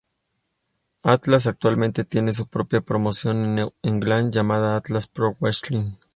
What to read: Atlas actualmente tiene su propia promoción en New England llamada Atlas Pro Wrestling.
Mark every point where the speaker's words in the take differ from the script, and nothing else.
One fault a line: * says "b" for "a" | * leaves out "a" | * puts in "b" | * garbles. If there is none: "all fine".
all fine